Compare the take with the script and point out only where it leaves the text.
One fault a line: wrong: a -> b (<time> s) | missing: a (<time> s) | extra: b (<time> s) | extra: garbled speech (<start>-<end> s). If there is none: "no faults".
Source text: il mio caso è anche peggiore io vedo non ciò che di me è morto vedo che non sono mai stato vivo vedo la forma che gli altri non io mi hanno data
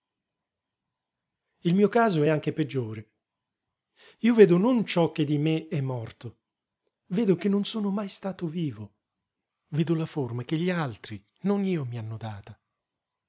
no faults